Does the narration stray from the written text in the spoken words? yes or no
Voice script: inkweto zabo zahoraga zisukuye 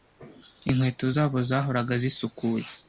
no